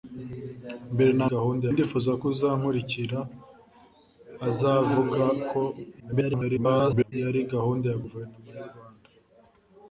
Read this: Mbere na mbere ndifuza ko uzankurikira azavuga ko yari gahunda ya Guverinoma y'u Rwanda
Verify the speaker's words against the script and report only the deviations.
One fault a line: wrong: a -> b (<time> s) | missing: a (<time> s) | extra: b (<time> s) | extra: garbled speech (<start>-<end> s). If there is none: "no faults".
wrong: mbere -> gahunda (1.3 s)
extra: garbled speech (6.0-7.1 s)